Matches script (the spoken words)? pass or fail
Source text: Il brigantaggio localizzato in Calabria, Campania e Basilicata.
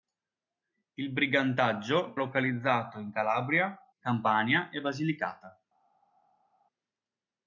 pass